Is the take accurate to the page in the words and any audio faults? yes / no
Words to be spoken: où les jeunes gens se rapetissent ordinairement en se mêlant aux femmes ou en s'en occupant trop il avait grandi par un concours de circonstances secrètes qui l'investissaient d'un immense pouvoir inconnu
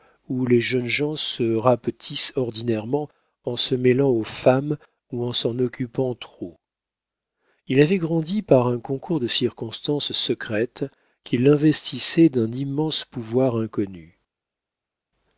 yes